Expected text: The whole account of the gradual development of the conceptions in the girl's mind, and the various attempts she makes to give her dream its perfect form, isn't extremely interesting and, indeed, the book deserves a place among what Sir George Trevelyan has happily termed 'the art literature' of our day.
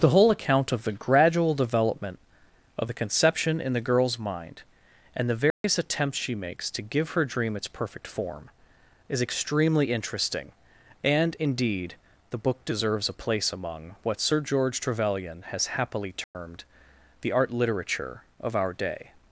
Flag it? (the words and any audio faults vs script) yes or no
yes